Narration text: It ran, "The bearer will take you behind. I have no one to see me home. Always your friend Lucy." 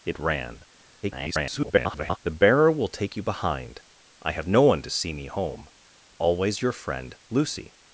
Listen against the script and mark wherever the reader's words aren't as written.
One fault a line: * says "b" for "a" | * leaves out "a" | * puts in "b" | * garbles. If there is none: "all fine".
* garbles